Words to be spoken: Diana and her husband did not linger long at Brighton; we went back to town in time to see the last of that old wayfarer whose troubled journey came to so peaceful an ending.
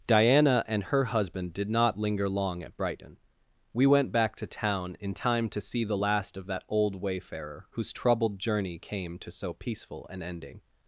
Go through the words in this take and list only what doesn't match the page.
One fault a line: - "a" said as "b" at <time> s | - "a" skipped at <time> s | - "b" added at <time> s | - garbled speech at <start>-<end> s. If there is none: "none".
none